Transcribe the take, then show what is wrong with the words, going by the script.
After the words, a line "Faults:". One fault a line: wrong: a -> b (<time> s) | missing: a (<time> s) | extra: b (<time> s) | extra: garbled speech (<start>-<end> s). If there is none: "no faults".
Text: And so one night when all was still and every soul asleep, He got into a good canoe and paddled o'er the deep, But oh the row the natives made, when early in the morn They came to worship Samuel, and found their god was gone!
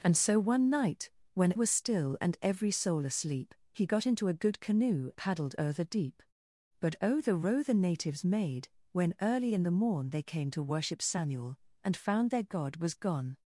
And so one night when was still and every soul asleep, He got into a good canoe paddled o'er the deep, But oh the row the natives made, when early in the morn They came to worship Samuel, and found their god was gone!
Faults:
missing: all (1.5 s)
missing: and (5.1 s)